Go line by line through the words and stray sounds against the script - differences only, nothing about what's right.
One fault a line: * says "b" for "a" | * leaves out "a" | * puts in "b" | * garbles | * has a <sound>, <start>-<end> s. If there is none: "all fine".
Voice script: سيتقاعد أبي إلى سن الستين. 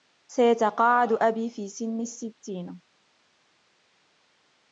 * says "في" for "إلى"